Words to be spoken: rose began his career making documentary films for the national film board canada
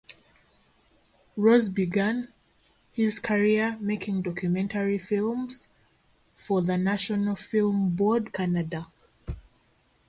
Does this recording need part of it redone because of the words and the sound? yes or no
no